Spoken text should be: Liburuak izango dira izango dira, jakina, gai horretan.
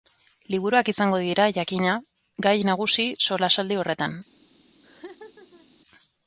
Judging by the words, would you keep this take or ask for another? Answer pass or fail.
fail